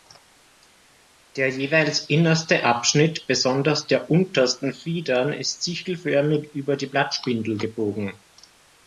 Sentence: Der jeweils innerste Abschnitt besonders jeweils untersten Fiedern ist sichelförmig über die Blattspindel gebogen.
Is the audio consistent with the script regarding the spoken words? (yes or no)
no